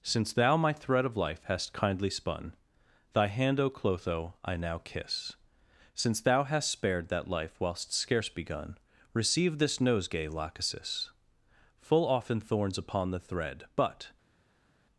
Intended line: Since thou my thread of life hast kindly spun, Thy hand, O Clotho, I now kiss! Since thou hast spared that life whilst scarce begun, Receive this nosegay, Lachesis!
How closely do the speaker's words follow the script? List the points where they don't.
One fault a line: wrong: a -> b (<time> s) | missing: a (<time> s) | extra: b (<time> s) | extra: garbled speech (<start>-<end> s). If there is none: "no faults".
extra: Full often thorns upon the thread But (11.8 s)